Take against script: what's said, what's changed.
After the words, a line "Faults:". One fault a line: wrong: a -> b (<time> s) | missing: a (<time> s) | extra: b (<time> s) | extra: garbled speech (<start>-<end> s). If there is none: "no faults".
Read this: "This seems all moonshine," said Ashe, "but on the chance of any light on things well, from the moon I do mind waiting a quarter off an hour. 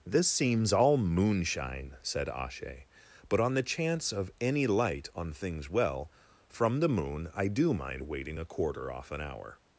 "This seems all moonshine," said Ashe, "but on the chance of any light on things well, from the moon I do mind waiting a quarter off an hour.
Faults:
no faults